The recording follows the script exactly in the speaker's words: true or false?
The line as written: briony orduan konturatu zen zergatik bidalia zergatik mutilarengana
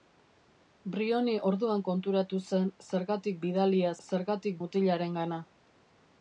true